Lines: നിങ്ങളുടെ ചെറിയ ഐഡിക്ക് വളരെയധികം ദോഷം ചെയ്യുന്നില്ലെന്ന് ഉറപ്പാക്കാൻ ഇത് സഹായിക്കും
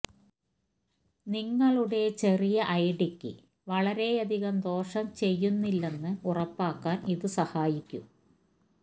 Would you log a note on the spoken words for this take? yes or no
no